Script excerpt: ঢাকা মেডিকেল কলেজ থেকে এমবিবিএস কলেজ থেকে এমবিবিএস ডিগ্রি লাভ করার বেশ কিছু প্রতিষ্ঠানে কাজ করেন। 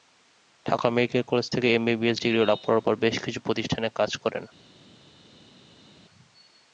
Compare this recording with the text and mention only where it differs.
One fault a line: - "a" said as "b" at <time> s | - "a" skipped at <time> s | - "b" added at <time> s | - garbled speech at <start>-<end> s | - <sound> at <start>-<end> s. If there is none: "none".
- "কলেজ থেকে এমবিবিএস" skipped at 2.2 s
- "পর" added at 2.8 s